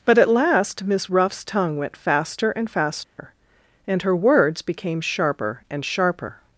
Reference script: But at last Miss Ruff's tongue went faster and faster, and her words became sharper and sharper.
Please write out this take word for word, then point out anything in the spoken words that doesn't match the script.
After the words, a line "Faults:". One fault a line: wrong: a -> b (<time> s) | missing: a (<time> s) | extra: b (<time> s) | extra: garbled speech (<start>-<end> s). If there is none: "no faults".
But at last Miss Ruff's tongue went faster and faster, and her words became sharper and sharper.
Faults:
no faults